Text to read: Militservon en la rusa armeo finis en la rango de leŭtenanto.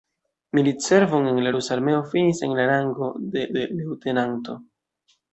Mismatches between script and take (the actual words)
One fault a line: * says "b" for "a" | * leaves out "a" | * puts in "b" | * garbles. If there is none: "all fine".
* puts in "de"